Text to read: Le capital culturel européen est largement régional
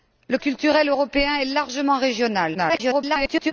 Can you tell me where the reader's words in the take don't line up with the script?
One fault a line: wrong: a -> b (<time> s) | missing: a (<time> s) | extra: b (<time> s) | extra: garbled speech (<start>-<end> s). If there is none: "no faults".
missing: capital (0.4 s)
extra: garbled speech (2.5-3.5 s)